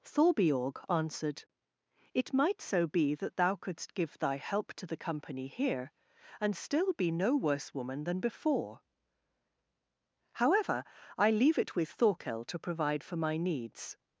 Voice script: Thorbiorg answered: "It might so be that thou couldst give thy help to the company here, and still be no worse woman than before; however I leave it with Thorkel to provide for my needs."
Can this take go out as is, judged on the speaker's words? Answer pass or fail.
pass